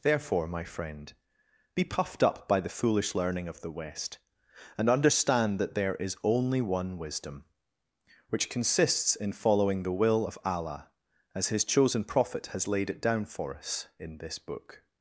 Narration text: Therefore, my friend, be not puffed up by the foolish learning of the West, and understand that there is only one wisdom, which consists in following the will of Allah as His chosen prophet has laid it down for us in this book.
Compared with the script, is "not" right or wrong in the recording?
wrong